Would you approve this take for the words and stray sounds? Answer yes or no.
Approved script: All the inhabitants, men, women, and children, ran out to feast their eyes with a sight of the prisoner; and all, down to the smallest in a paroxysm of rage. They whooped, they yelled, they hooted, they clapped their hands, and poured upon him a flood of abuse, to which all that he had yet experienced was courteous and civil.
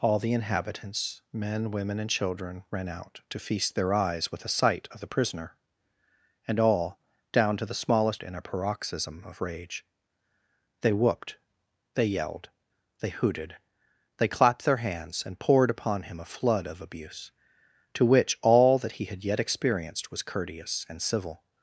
yes